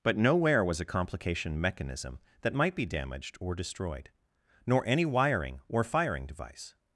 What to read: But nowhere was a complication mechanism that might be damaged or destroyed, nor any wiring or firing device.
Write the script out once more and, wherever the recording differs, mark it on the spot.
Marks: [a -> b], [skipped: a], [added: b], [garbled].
But nowhere was a complication mechanism that might be damaged or destroyed, nor any wiring or firing device.